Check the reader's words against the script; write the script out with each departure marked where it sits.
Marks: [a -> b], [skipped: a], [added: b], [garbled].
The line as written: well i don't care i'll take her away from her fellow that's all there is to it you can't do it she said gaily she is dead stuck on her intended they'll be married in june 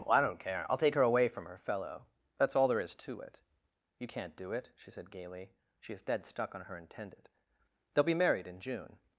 well i don't care i'll take her away from her fellow that's all there is to it you can't do it she said gaily she is dead stuck on her intended they'll be married in june